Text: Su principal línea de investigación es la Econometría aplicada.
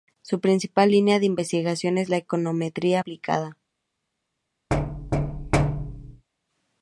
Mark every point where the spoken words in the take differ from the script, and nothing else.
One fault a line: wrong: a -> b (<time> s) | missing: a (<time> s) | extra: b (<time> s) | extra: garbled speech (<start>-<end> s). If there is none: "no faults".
no faults